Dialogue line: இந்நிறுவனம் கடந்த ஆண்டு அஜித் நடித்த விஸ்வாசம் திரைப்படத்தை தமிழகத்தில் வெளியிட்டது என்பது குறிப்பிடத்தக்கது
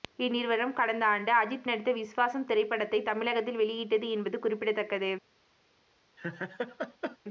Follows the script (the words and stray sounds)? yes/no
no